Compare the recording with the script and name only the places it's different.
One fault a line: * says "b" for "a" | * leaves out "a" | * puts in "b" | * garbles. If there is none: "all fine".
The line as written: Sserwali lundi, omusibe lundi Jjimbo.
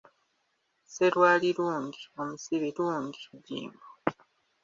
all fine